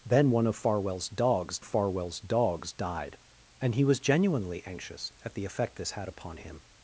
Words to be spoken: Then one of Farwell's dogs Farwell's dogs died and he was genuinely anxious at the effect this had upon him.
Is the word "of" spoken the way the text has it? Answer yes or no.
yes